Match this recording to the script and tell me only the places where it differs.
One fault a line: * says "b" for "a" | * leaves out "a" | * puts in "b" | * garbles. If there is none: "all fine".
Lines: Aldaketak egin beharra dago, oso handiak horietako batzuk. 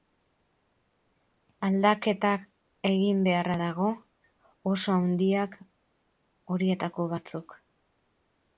all fine